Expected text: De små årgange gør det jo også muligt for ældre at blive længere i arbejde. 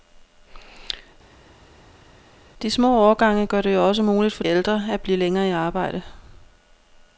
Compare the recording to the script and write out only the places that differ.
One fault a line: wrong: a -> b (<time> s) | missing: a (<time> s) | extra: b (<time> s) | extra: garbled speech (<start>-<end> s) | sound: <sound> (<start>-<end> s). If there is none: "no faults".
no faults